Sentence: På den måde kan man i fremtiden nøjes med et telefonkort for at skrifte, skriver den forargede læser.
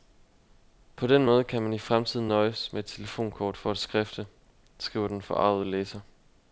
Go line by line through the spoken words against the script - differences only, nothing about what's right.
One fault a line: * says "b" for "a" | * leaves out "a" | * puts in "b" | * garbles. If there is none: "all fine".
all fine